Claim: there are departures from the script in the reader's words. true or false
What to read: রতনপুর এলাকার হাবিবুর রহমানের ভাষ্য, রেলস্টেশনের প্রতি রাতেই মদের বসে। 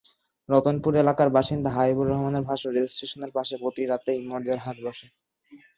true